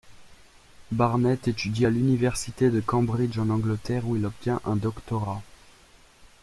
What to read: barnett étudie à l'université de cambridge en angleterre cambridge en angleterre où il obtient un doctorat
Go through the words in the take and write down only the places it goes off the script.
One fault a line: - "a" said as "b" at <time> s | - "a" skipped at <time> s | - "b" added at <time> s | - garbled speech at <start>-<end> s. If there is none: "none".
- "cambridge en angleterre" skipped at 4.1 s